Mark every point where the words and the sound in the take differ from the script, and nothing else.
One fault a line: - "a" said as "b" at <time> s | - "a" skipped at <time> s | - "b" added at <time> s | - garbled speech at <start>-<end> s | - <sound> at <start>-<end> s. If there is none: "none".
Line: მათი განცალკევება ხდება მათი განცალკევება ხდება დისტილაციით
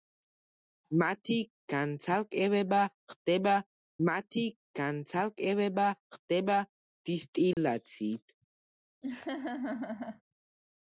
- dropout at 7.5-7.6 s
- laugh at 9.0-10.2 s